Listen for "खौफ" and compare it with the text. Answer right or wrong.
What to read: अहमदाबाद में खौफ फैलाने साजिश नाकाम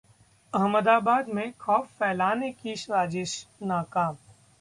right